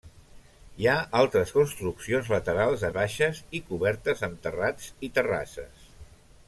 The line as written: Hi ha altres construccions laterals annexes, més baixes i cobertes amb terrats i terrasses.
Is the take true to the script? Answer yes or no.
no